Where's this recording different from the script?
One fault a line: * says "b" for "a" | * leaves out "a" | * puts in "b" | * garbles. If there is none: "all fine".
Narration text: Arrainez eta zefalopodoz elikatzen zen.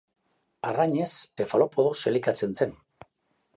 * leaves out "eta"